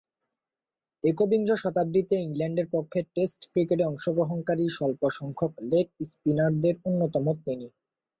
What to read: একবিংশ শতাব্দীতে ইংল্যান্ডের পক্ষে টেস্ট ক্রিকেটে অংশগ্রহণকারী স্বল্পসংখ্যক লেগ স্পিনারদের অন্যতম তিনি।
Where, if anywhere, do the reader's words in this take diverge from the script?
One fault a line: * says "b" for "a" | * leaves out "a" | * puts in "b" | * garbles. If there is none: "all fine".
all fine